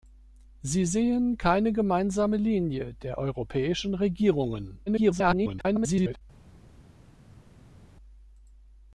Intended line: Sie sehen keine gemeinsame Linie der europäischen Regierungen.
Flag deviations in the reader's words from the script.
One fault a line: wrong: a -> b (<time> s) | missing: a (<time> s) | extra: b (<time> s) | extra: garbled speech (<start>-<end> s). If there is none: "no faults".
extra: garbled speech (4.9-6.2 s)